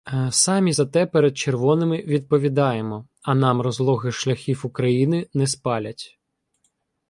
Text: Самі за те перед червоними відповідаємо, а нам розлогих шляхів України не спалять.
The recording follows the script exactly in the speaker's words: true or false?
true